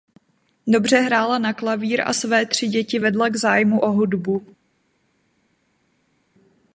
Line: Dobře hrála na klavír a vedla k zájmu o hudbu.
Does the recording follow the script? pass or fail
fail